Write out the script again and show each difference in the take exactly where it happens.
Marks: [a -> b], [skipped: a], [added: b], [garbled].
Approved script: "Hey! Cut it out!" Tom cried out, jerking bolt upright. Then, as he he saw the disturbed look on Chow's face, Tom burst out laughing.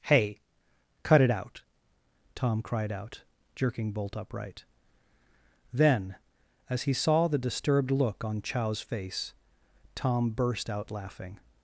"Hey! Cut it out!" Tom cried out, jerking bolt upright. Then, as he [skipped: he] saw the disturbed look on Chow's face, Tom burst out laughing.